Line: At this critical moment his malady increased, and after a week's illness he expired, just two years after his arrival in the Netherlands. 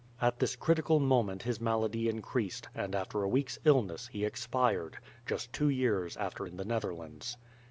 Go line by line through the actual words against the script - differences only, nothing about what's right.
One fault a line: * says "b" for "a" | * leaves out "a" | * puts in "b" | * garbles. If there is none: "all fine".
* leaves out "his arrival"